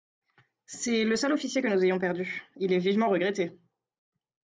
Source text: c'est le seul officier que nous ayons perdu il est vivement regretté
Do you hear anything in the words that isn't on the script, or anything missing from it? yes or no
no